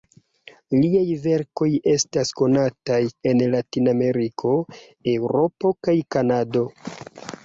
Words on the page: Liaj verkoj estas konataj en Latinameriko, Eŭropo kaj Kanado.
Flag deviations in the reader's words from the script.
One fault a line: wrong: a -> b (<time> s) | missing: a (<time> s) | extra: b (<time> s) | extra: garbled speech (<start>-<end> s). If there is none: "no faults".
no faults